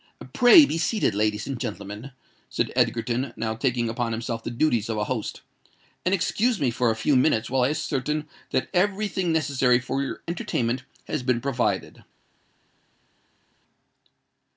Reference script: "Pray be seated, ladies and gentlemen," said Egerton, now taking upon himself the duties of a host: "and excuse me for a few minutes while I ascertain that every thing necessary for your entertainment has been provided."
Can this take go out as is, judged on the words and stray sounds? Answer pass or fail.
pass